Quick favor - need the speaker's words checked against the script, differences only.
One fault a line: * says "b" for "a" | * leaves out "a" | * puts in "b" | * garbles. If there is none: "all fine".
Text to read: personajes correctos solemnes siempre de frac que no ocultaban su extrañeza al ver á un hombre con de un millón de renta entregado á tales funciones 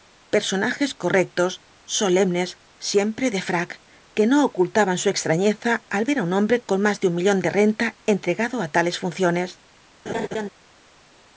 * puts in "más"